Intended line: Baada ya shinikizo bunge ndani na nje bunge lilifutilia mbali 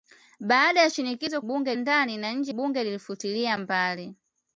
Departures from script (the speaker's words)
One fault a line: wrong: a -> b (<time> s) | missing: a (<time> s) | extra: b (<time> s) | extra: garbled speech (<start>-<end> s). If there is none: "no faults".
no faults